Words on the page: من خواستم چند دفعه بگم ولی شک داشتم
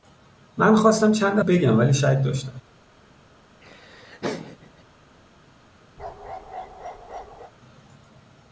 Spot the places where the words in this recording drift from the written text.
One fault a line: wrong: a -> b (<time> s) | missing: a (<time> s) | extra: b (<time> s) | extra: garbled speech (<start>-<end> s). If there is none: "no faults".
missing: دفعه (1.4 s)